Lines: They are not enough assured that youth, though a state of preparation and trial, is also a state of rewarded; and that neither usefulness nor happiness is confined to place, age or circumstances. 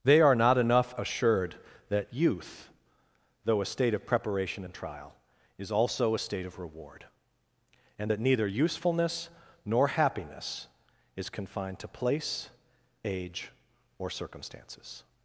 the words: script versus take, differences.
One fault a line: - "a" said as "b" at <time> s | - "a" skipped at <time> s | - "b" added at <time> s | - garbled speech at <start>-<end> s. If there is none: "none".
- "rewarded" said as "reward" at 6.6 s